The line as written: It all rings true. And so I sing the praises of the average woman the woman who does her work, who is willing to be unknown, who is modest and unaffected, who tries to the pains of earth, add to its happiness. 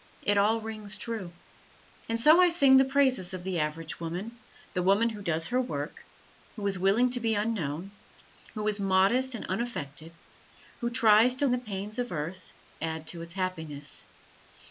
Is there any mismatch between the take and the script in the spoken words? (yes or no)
no